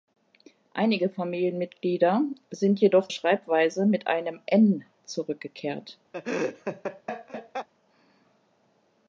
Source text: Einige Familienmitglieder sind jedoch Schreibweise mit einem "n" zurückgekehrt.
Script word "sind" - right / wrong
right